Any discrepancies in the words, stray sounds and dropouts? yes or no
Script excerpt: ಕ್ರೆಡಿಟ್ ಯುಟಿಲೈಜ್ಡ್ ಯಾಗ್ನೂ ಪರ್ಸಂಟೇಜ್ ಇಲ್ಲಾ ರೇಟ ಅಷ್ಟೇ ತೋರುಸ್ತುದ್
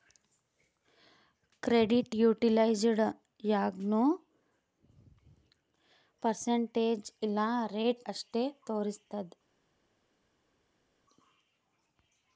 no